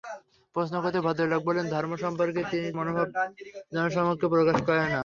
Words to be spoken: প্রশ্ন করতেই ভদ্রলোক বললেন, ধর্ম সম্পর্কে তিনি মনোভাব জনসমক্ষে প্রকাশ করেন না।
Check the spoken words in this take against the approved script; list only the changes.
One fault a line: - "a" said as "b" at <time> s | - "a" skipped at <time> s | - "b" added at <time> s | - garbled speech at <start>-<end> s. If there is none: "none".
none